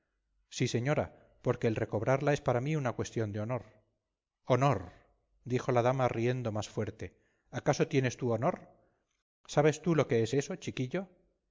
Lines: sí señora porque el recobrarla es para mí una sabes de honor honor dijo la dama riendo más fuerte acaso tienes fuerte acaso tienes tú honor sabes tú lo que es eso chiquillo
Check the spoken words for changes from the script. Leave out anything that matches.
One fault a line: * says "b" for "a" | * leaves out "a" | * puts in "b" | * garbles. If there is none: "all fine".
* says "cuestión" for "sabes"
* leaves out "fuerte acaso tienes"